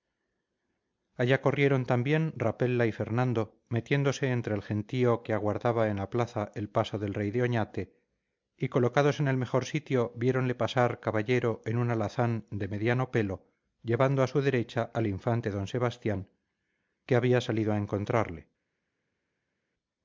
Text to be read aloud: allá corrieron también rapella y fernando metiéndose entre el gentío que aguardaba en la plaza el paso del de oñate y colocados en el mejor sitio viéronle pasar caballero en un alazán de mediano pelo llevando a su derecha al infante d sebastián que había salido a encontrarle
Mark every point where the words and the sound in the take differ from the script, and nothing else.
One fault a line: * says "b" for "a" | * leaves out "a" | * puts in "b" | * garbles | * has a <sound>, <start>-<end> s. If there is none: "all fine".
* puts in "rey"